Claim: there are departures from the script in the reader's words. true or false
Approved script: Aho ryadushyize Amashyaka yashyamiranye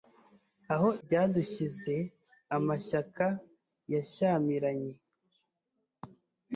false